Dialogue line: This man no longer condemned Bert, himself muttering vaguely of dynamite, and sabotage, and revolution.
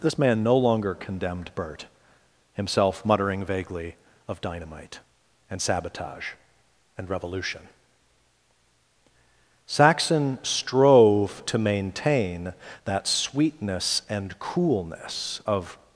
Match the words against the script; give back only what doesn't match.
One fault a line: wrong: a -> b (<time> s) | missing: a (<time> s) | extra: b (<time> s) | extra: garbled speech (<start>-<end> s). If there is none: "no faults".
extra: Saxon strove to maintain that sweetness and coolness of (9.7 s)